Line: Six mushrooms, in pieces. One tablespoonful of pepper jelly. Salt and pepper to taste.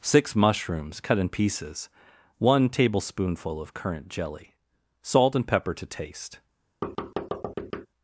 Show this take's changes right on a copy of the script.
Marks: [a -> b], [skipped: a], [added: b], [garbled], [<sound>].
Six mushrooms, [added: cut] in pieces. One tablespoonful of [pepper -> currant] jelly. Salt and pepper to taste. [thud]